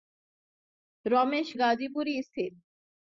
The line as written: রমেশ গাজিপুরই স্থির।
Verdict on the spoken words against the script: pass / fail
pass